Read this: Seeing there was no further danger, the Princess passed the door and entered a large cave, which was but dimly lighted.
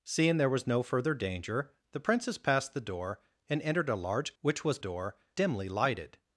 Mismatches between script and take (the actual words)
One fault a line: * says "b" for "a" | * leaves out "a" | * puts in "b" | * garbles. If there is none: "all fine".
* leaves out "cave"
* says "door" for "but"